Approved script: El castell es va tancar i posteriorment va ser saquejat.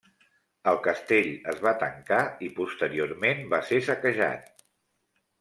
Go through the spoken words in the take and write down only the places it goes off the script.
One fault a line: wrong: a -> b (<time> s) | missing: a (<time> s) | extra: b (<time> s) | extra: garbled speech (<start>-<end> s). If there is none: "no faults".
no faults